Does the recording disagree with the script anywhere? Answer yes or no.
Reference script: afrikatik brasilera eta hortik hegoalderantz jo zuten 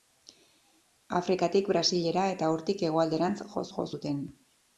yes